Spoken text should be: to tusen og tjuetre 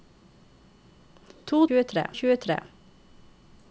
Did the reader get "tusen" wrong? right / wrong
wrong